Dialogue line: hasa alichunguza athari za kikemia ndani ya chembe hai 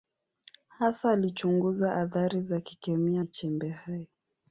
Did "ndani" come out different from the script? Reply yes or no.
yes